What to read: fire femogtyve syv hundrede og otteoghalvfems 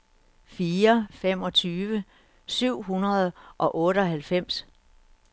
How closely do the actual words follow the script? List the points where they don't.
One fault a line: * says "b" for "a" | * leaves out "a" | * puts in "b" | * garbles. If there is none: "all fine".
all fine